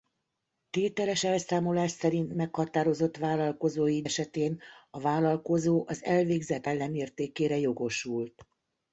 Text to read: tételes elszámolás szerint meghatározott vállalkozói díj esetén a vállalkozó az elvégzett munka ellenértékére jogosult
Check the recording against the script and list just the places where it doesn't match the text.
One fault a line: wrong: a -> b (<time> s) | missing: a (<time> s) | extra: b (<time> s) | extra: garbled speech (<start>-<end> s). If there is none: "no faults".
missing: díj (4.0 s)
missing: munka (6.7 s)